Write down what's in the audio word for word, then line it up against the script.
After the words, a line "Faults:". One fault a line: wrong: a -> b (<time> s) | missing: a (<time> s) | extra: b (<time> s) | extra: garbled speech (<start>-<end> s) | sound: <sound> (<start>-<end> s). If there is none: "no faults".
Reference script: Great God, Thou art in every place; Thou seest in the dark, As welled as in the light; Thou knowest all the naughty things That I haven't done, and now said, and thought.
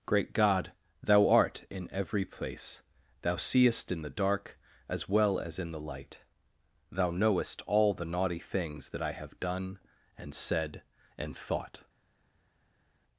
Great God, Thou art in every place; Thou seest in the dark, As well as in the light; Thou knowest all the naughty things That I have done, and said, and thought.
Faults:
wrong: welled -> well (5.1 s)
wrong: haven't -> have (9.1 s)
missing: now (10.3 s)